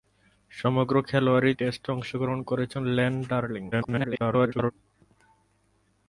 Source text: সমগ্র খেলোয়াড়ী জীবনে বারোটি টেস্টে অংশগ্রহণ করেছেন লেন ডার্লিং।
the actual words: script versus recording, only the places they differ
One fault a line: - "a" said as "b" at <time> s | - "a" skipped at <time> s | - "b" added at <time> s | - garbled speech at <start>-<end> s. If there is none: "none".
- "জীবনে বারোটি" skipped at 1.5 s
- garbled speech at 3.7-4.7 s